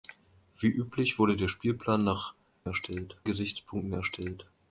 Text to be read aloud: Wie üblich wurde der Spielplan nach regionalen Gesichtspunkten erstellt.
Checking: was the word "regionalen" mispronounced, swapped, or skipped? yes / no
yes